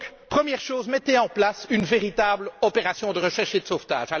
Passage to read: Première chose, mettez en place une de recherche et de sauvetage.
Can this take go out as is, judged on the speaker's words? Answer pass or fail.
fail